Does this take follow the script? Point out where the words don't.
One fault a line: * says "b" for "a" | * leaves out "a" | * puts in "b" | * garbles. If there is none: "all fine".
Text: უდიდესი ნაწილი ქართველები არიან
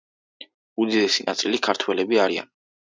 all fine